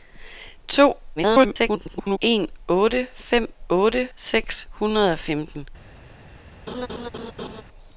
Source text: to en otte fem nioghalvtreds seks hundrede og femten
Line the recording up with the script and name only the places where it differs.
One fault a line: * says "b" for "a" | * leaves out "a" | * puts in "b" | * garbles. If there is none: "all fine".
* garbles
* says "otte" for "nioghalvtreds"